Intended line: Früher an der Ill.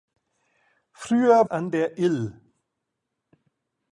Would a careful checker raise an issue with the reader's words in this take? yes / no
no